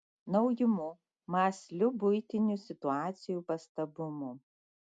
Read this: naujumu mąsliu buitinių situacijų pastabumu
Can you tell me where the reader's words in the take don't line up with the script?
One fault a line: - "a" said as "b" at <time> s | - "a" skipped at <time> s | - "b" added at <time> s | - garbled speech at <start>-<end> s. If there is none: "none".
none